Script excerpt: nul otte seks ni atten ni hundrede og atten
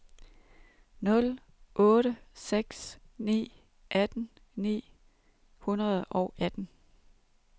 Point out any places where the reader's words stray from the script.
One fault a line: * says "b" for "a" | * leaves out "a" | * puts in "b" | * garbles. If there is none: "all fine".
all fine